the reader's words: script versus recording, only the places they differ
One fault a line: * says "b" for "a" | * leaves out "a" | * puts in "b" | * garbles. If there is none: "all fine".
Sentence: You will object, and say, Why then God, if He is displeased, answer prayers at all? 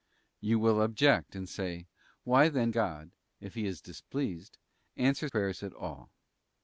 all fine